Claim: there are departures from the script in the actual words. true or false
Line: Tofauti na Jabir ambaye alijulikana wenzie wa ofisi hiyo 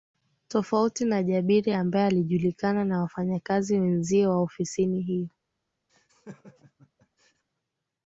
true